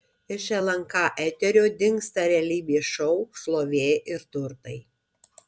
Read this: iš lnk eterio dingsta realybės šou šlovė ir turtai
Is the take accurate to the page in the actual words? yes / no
yes